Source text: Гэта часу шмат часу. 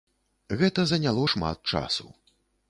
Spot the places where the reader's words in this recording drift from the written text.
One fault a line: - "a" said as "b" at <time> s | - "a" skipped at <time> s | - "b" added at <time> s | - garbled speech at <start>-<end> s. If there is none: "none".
- "часу" said as "заняло" at 0.9 s